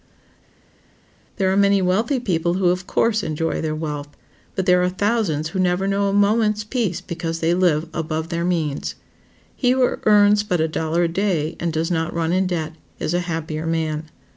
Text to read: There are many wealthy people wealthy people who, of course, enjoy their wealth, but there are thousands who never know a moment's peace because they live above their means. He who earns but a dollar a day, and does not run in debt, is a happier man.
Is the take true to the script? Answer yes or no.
no